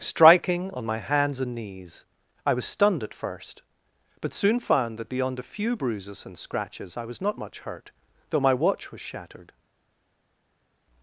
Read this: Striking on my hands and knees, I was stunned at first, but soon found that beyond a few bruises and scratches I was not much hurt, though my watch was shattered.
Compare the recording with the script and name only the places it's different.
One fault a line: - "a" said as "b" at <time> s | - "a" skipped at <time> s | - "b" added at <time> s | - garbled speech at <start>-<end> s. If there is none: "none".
none